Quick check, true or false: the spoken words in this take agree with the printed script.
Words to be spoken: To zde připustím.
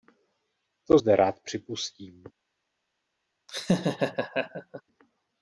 false